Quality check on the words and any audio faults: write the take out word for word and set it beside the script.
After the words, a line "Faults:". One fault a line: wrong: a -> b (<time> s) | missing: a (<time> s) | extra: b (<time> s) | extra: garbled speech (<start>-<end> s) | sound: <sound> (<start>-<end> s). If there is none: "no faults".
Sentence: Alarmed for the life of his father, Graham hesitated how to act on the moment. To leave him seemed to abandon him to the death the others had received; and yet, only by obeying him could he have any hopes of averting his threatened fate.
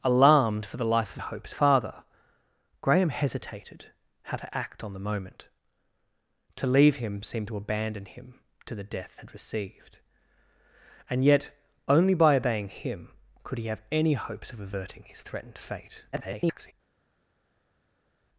Alarmed for the life of hopes father, Graham hesitated how to act on the moment. To leave him seemed to abandon him to the death had received; and yet, only by obeying him could he have any hopes of averting his threatened fate. [garbled]
Faults:
wrong: his -> hopes (1.2 s)
missing: the others (9.2 s)
extra: garbled speech (16.1-16.7 s)